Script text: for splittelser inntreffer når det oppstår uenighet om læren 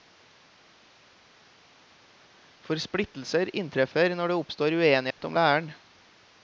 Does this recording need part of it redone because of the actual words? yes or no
no